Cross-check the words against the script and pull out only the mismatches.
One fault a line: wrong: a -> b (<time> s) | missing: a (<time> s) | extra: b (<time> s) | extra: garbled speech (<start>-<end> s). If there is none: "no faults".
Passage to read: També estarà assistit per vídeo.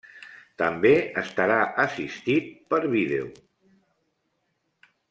no faults